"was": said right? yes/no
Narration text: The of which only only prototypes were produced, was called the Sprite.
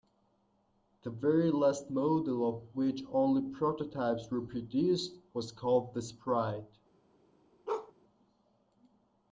yes